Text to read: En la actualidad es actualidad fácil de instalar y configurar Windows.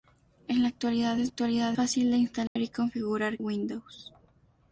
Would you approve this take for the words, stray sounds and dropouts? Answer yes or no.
no